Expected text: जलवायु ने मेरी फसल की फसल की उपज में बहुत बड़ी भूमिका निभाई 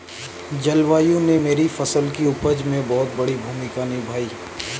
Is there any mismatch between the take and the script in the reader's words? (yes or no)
yes